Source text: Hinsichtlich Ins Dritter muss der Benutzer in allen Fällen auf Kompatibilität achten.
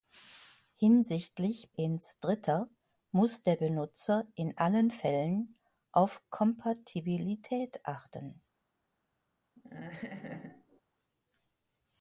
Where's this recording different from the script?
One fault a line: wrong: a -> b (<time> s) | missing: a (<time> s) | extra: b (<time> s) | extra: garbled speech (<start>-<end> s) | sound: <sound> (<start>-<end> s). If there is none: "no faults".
sound: laugh (9.6-10.8 s)